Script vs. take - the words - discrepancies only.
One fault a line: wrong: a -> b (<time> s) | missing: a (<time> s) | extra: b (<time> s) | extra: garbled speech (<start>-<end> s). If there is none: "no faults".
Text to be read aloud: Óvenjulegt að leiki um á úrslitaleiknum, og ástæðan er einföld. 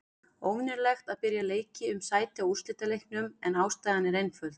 extra: byrja (1.3 s)
extra: sæti (2.1 s)
wrong: og -> en (3.5 s)